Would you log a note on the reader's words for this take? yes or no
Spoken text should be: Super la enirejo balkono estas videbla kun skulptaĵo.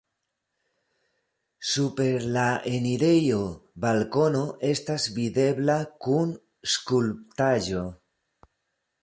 no